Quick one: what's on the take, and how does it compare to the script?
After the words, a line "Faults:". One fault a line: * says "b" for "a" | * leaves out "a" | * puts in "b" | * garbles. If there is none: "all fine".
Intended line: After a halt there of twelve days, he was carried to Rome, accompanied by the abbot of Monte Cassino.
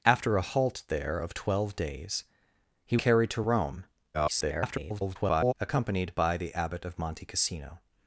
After a halt there of twelve days, he carried to Rome, [garbled] accompanied by the abbot of Monte Cassino.
Faults:
* leaves out "was"
* garbles